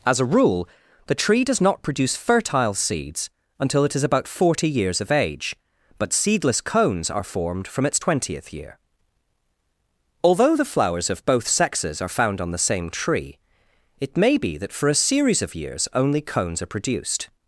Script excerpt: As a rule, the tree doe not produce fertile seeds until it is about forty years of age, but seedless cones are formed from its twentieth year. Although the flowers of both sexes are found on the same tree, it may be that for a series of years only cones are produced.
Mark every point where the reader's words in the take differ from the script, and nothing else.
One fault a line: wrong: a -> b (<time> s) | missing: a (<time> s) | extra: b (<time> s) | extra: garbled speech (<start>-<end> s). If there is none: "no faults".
wrong: doe -> does (1.4 s)